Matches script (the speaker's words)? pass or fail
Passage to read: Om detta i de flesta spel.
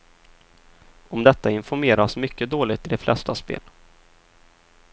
fail